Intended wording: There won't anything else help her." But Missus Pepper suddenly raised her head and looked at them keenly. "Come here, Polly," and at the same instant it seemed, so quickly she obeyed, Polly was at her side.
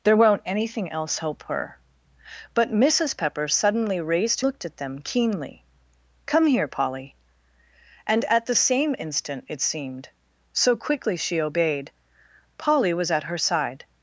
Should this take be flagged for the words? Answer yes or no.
yes